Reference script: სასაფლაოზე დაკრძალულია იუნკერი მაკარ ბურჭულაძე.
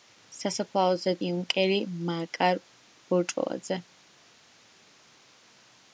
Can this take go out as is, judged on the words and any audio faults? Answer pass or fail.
fail